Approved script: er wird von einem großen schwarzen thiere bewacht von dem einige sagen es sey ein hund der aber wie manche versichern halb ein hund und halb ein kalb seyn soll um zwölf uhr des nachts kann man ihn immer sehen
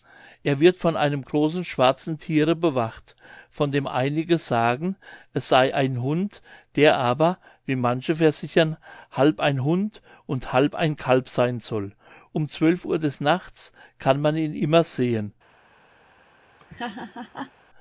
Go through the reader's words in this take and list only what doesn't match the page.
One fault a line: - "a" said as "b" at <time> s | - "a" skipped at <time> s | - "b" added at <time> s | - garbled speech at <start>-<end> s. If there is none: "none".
none